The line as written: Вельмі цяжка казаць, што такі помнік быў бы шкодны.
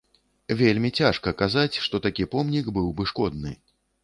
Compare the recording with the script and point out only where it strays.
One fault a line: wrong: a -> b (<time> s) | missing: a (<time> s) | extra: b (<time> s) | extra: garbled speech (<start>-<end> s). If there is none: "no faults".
no faults